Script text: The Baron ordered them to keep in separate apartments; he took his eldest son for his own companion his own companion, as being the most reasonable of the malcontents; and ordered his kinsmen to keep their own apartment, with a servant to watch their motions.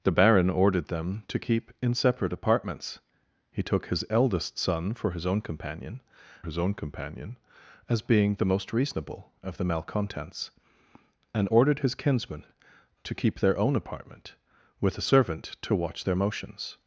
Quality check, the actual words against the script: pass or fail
pass